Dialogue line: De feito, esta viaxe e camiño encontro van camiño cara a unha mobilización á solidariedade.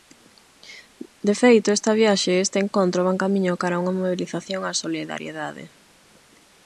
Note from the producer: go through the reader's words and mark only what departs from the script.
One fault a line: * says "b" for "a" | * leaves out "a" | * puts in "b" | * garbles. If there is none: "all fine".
* says "este" for "camiño"